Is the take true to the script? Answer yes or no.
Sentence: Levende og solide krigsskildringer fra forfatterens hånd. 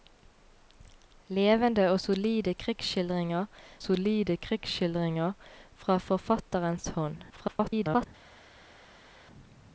no